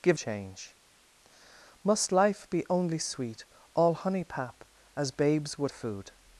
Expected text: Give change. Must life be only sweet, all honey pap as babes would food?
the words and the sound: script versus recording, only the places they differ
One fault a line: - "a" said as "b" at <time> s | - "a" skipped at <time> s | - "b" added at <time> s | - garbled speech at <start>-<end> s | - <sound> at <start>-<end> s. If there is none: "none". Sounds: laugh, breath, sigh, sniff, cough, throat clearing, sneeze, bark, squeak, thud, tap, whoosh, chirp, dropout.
none